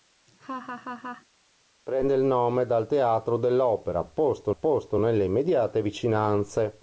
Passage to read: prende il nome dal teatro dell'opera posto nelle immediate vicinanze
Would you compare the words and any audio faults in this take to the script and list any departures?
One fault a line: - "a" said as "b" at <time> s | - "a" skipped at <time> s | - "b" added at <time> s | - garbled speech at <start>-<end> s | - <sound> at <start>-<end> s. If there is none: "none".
- laugh at 0.3-1.3 s
- "posto" added at 4.5 s